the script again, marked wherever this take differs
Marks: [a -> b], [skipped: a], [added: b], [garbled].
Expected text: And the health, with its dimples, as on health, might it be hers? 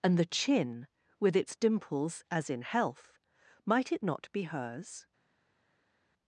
And the [health, -> chin] with its dimples, as [on -> in] health, might it [added: not] be hers?